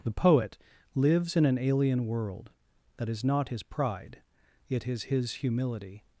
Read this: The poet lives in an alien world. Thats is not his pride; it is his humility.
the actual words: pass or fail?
fail